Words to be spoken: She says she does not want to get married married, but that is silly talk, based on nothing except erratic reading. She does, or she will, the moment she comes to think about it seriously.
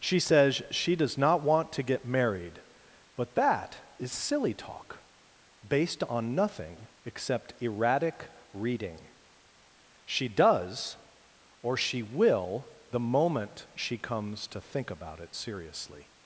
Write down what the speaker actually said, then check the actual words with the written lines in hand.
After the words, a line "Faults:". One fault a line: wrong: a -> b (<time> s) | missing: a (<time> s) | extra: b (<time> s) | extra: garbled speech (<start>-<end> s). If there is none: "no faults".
She says she does not want to get married, but that is silly talk, based on nothing except erratic reading. She does, or she will, the moment she comes to think about it seriously.
Faults:
missing: married (2.6 s)